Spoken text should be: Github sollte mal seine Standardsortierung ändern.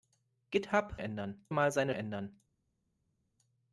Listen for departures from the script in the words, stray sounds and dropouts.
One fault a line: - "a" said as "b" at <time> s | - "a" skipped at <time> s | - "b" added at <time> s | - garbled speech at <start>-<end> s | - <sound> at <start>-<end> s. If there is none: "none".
- "sollte" said as "ändern" at 1.0 s
- "Standardsortierung" skipped at 1.9 s